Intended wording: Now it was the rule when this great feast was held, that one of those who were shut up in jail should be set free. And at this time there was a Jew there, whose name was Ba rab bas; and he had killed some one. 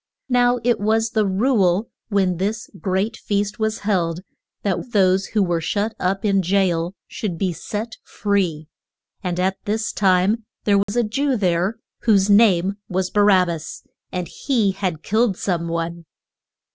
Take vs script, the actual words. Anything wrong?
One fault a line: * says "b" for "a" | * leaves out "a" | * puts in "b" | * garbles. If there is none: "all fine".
* leaves out "one"